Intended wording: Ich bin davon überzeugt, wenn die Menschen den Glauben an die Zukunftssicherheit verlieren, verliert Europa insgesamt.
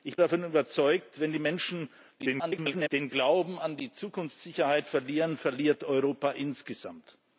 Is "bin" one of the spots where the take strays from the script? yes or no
yes